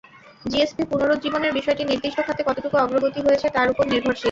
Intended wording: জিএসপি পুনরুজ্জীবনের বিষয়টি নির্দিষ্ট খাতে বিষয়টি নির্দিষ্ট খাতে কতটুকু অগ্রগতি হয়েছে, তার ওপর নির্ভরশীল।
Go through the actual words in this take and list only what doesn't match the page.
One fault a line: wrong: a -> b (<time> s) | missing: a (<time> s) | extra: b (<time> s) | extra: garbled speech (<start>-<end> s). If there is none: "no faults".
missing: বিষয়টি নির্দিষ্ট খাতে (2.4 s)